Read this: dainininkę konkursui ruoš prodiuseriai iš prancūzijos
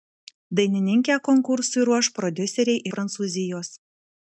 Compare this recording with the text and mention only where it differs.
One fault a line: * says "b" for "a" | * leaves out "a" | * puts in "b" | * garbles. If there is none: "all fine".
* leaves out "iš"